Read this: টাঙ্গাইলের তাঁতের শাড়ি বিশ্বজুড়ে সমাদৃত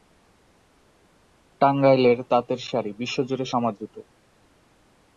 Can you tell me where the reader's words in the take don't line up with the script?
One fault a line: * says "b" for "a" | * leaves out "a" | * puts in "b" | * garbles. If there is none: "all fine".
all fine